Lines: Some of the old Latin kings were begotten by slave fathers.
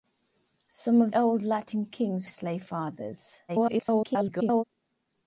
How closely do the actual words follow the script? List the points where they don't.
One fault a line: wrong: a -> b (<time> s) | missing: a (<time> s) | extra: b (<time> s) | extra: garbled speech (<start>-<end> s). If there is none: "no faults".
missing: the (1.1 s)
missing: were begotten by (2.3 s)
extra: garbled speech (3.5-4.6 s)